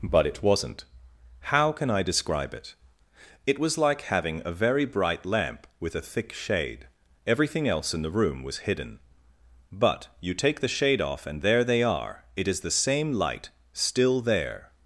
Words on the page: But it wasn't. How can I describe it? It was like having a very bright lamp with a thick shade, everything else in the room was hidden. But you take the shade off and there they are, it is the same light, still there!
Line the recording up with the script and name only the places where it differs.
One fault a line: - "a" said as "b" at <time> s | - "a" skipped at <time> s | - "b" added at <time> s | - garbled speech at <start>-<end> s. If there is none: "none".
none